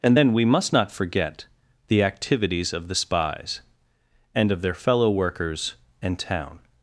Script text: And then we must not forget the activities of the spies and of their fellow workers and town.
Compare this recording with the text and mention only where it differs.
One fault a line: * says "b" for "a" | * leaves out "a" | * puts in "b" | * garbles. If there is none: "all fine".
all fine